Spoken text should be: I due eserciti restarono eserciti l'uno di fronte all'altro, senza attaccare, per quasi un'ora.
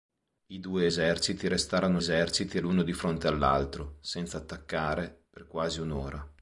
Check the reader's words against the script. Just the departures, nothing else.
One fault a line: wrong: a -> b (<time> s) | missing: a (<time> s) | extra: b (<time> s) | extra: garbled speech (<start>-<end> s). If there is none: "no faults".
no faults